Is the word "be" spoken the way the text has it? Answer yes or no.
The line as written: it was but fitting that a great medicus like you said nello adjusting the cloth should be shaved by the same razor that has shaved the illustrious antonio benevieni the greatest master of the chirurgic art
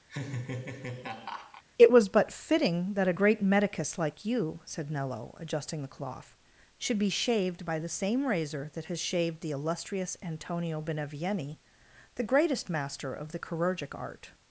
yes